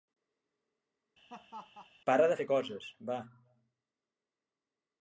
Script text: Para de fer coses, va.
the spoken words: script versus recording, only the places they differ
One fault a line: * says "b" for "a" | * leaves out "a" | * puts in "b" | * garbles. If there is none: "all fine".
all fine